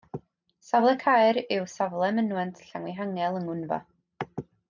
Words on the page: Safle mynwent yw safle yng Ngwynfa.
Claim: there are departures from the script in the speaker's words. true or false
true